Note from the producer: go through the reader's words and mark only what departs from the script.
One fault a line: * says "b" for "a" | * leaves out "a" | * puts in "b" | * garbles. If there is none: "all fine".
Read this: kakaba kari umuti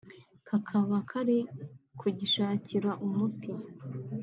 * puts in "kugishakira"